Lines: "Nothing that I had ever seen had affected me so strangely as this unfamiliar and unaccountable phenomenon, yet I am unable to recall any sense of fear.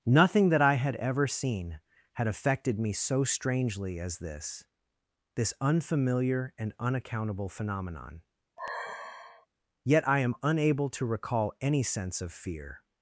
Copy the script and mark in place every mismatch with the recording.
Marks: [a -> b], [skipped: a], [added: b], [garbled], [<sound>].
"Nothing that I had ever seen had affected me so strangely as this [added: this] unfamiliar and unaccountable phenomenon, [sigh] yet I am unable to recall any sense of fear.